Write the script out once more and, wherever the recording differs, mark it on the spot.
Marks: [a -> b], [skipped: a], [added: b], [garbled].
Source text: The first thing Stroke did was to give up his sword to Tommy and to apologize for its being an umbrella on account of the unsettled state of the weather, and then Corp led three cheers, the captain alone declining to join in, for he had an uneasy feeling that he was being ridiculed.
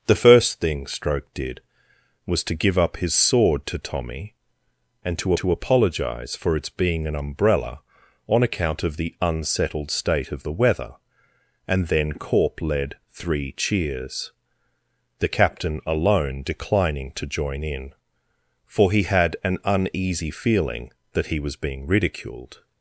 The first thing Stroke did was to give up his sword to Tommy and to [added: to] apologize for its being an umbrella on account of the unsettled state of the weather, and then Corp led three cheers, the captain alone declining to join in, for he had an uneasy feeling that he was being ridiculed.